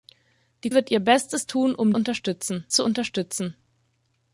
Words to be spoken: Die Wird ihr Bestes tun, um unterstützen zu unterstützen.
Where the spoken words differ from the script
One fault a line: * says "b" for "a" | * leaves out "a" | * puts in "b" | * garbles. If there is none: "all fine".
all fine